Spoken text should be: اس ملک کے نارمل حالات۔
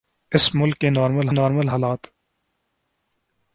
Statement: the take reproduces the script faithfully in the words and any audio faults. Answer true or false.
false